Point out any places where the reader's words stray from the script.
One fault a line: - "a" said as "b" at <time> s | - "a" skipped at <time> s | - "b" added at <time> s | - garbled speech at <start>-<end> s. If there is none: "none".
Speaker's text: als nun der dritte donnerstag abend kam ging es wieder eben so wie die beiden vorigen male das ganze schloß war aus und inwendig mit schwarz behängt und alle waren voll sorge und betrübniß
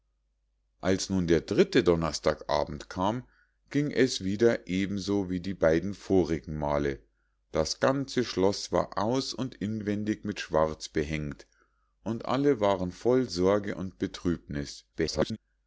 - garbled speech at 14.9-15.4 s